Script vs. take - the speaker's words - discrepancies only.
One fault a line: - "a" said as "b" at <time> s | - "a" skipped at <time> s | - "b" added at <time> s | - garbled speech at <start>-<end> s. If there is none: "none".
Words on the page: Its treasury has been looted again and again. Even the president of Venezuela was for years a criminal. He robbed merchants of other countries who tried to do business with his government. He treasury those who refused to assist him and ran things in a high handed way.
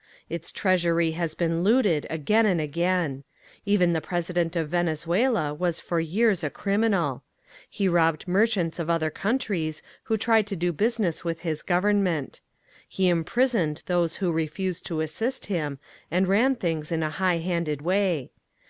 - "treasury" said as "imprisoned" at 13.1 s